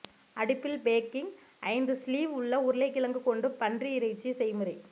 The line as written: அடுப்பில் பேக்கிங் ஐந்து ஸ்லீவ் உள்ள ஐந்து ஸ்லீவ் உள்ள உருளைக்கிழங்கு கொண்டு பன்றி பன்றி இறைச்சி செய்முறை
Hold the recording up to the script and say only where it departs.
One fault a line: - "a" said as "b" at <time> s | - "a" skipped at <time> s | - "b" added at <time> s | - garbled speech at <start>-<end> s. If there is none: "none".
- "ஐந்து ஸ்லீவ் உள்ள" skipped at 2.6 s
- "பன்றி" skipped at 3.9 s